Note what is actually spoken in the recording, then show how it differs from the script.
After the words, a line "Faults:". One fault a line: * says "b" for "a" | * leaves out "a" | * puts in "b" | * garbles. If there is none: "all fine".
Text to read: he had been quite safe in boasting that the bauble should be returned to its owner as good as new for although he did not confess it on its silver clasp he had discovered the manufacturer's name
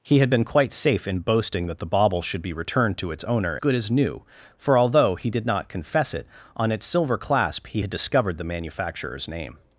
he had been quite safe in boasting that the bauble should be returned to its owner good as new for although he did not confess it on its silver clasp he had discovered the manufacturer's name
Faults:
* leaves out "as"